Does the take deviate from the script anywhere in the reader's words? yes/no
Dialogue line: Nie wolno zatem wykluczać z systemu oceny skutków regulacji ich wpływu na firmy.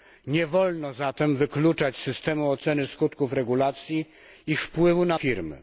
no